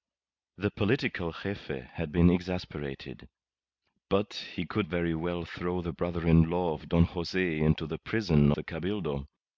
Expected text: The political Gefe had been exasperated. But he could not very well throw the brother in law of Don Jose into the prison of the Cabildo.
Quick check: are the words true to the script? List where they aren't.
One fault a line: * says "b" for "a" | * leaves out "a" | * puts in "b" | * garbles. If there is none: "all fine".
* leaves out "not"
* leaves out "of"